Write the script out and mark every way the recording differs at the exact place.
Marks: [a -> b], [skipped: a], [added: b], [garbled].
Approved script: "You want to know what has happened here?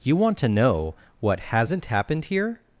"You want to know what [has -> hasn't] happened here?